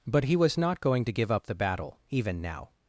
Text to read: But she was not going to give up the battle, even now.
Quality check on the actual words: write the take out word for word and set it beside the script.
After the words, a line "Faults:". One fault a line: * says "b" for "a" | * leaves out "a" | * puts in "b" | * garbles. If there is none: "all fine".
But he was not going to give up the battle, even now.
Faults:
* says "he" for "she"